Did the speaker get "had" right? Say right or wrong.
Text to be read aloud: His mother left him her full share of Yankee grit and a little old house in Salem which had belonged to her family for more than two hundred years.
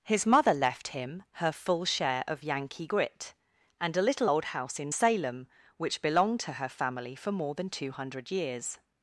wrong